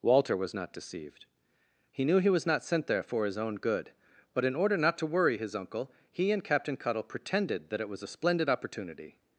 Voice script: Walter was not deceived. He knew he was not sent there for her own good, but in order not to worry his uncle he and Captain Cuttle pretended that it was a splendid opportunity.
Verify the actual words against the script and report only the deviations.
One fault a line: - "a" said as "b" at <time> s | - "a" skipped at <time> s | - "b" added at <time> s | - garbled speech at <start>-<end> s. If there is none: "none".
- "her" said as "his" at 3.2 s